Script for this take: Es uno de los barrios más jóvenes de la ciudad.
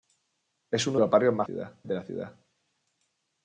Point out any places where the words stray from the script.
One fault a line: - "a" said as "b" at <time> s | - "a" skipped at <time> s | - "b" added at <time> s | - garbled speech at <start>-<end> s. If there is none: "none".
- "de" skipped at 1.0 s
- "jóvenes" said as "ciudad" at 1.4 s